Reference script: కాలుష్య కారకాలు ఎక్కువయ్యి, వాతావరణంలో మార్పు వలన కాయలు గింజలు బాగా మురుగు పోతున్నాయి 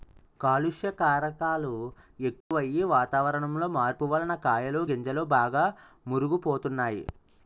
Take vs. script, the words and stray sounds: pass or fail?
fail